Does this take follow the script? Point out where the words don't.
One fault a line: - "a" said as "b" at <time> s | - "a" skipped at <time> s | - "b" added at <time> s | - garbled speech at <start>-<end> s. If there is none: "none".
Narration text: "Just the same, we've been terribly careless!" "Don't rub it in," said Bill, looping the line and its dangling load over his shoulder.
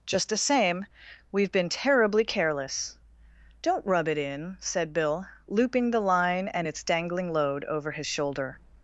none